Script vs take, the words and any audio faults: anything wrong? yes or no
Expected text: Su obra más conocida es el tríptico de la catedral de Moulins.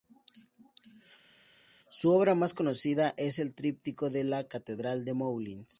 no